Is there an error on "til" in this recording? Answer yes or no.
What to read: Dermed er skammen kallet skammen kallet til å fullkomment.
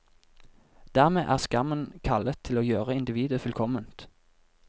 yes